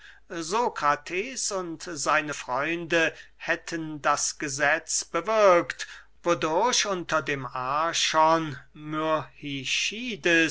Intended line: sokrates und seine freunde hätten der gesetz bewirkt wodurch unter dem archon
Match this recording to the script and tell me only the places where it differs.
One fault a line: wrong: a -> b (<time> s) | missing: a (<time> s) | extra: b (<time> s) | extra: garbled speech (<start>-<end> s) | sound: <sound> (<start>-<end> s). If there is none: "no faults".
wrong: der -> das (4.0 s)